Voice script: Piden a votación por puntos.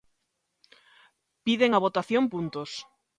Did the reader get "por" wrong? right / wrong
wrong